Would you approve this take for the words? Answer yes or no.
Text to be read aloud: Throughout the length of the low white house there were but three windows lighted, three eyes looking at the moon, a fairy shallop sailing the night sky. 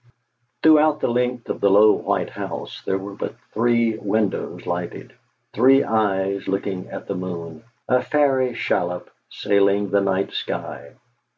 yes